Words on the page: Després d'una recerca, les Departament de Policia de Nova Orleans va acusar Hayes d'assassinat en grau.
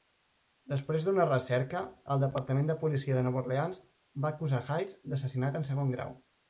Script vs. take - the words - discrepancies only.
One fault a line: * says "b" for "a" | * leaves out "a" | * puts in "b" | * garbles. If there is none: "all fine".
* says "el" for "les"
* puts in "segon"